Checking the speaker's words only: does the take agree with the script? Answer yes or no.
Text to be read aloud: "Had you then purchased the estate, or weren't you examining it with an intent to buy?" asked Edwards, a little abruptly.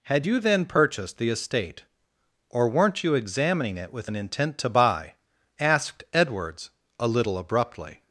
yes